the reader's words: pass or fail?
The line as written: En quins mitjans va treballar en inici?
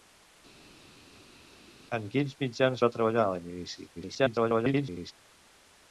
fail